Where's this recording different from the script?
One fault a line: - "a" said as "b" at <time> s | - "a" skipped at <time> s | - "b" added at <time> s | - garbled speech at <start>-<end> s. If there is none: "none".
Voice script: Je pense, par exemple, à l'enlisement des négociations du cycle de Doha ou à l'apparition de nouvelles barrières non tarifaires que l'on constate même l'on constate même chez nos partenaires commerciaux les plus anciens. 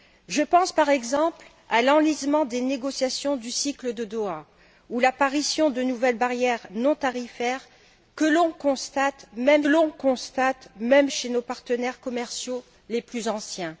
none